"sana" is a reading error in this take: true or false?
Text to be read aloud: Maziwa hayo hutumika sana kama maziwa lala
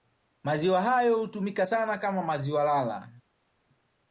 false